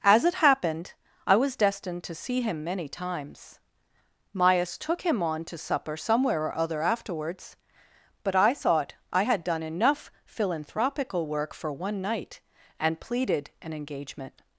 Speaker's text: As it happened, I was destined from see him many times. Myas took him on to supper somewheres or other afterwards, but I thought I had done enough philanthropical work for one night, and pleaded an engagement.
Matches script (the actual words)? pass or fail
fail